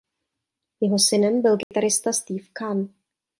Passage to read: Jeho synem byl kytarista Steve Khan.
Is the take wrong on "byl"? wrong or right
right